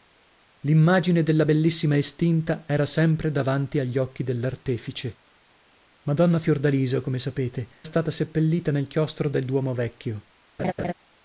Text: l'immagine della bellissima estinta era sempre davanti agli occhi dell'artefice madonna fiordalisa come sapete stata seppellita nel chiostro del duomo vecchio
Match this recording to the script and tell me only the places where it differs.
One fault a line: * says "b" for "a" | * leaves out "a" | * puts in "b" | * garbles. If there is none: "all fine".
all fine